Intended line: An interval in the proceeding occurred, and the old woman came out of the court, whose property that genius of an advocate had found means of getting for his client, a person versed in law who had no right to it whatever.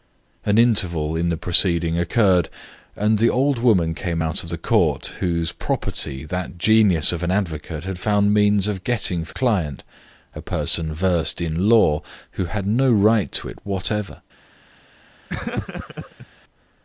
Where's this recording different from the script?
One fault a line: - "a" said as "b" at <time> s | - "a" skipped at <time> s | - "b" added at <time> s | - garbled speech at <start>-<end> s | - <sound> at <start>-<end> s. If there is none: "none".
- "his" skipped at 9.4 s
- laugh at 15.3-16.3 s